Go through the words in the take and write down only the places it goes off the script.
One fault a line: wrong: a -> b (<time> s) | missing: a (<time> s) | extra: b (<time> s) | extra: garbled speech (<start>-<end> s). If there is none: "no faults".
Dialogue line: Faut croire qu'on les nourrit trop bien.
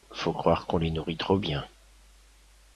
no faults